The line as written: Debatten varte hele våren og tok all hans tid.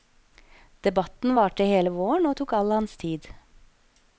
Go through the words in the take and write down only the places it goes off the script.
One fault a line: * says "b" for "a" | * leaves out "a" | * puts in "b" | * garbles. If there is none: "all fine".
all fine